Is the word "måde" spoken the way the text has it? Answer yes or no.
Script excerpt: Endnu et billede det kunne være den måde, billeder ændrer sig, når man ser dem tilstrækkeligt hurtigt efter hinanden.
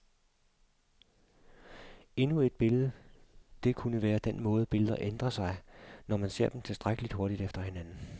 yes